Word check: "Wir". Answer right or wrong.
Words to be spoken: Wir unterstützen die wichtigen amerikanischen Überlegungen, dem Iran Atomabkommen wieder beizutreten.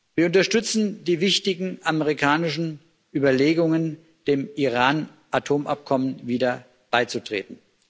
right